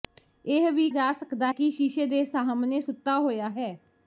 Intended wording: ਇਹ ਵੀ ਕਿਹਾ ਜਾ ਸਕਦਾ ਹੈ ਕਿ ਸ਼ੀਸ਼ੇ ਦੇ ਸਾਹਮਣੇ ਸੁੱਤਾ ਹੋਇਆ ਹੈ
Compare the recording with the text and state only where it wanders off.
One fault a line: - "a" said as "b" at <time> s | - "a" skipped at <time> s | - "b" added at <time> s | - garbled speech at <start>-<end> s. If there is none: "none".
- "ਕਿਹਾ" skipped at 0.9 s
- "ਹੈ" skipped at 1.5 s